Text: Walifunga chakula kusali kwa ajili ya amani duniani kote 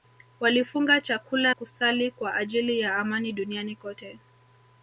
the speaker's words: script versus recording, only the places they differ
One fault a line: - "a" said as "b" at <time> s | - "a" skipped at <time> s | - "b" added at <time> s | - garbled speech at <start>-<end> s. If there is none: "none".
none